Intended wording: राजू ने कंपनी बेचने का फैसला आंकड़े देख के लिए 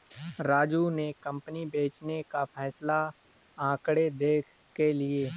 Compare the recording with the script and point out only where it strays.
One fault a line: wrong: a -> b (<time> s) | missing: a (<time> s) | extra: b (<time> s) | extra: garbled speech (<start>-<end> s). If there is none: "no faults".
no faults